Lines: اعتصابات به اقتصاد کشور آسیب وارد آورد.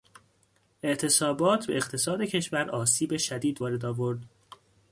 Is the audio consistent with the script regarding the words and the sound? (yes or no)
no